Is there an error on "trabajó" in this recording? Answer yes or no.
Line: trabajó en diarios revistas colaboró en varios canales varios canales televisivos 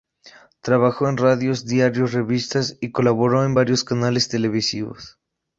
no